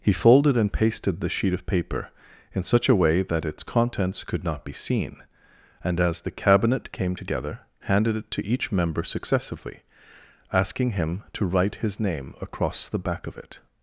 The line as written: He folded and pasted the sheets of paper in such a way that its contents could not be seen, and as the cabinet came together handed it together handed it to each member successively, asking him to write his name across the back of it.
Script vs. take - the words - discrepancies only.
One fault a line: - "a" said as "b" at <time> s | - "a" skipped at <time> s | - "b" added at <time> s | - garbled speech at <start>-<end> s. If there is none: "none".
- "sheets" said as "sheet" at 1.3 s
- "together handed it" skipped at 8.3 s